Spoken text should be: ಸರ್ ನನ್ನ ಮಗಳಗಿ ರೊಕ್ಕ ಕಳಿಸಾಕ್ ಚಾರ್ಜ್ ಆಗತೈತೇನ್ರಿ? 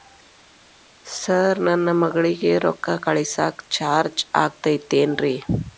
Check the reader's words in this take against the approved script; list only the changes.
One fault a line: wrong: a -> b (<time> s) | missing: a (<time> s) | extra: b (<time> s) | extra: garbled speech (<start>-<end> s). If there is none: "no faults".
no faults